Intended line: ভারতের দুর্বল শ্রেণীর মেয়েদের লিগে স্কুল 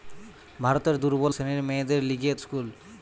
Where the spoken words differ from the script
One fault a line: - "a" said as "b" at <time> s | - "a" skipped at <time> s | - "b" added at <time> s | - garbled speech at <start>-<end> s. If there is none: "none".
none